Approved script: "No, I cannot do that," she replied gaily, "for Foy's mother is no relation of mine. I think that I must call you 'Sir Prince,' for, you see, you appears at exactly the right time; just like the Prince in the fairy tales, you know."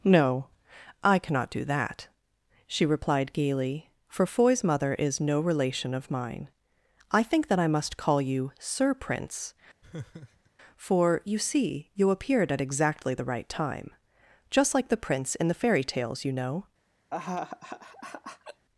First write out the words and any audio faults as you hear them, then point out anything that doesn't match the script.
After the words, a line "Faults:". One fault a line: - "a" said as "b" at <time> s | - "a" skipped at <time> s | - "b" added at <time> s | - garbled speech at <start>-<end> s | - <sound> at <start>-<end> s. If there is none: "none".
"No, I cannot do that," she replied gaily, "for Foy's mother is no relation of mine. I think that I must call you 'Sir Prince,' for, you see, you appeared at exactly the right time; just like the Prince in the fairy tales, you know."
Faults:
- laugh at 9.8-10.5 s
- "appears" said as "appeared" at 12.1 s
- laugh at 17.1-18.7 s